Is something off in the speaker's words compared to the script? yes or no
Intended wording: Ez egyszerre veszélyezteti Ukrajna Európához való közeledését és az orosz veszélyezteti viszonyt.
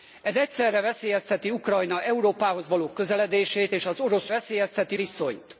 no